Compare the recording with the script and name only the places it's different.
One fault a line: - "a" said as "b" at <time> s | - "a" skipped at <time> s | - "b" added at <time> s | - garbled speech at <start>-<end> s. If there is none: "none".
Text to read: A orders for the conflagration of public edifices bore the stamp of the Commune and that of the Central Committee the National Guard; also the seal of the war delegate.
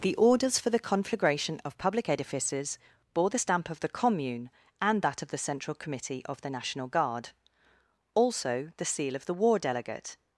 - "A" said as "The" at 0.0 s
- "of" added at 6.2 s